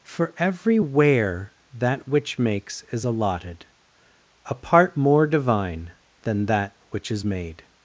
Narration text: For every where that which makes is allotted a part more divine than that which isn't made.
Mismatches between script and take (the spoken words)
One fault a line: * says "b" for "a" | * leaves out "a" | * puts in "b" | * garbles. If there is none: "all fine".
* says "is" for "isn't"